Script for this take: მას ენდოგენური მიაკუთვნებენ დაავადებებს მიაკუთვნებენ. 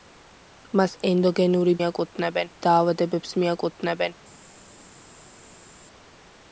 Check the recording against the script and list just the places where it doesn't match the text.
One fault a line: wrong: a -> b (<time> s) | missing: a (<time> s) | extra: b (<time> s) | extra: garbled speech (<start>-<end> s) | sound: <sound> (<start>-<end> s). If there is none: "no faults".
no faults